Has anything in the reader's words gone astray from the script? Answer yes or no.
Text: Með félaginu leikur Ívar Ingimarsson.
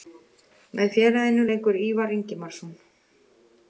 no